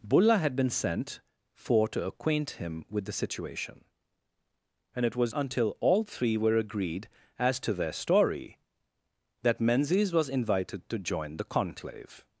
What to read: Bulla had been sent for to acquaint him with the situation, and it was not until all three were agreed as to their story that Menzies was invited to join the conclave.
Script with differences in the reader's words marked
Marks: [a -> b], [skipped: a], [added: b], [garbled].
Bulla had been sent for to acquaint him with the situation, and it was [skipped: not] until all three were agreed as to their story that Menzies was invited to join the conclave.